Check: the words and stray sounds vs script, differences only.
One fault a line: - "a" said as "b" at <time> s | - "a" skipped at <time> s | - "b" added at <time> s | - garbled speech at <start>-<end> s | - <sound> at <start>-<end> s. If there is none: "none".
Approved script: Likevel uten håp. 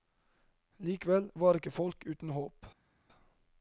- "var ikke folk" added at 1.4 s